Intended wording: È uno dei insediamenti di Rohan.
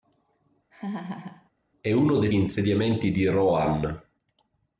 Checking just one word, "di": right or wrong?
right